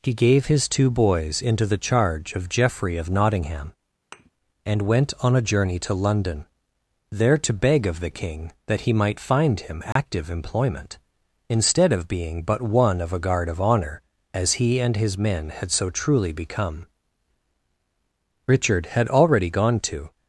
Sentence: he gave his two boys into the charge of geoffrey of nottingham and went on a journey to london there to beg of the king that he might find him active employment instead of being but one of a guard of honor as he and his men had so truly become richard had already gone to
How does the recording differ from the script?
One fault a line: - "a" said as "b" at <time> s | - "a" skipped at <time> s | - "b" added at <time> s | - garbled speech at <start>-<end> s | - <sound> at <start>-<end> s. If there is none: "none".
- thud at 4.1-4.3 s
- dropout at 9.9-10.0 s